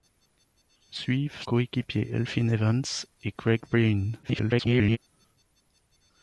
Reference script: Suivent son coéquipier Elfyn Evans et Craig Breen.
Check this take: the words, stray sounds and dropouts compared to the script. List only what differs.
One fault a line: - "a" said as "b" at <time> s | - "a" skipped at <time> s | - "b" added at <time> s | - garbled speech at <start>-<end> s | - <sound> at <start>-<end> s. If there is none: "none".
- "son" skipped at 1.4 s
- garbled speech at 4.2-5.0 s